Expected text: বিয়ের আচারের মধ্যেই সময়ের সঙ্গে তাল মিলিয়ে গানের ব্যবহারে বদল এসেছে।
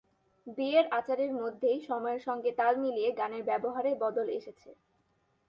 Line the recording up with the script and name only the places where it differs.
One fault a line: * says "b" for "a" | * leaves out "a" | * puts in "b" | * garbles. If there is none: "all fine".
all fine